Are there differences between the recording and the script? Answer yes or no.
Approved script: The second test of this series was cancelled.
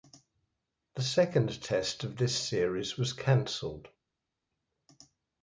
no